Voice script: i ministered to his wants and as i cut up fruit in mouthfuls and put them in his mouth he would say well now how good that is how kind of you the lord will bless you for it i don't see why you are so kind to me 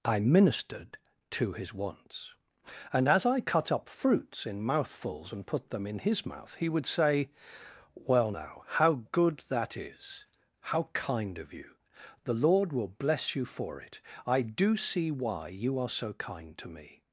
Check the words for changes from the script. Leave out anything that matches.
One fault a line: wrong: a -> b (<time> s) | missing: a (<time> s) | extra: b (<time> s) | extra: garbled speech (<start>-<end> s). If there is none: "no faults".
wrong: fruit -> fruits (3.9 s)
wrong: don't -> do (14.4 s)